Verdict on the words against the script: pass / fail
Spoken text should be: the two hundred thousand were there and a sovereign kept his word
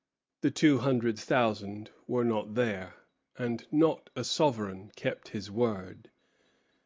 fail